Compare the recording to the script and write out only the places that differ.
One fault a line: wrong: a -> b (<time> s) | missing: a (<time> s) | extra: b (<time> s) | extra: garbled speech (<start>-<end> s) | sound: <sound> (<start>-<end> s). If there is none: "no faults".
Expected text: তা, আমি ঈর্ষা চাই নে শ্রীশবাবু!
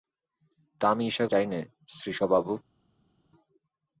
no faults